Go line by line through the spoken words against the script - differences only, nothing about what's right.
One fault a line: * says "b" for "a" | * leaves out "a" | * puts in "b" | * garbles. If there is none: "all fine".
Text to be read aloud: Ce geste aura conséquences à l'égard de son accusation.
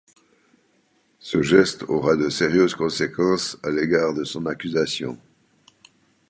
* puts in "de sérieuses"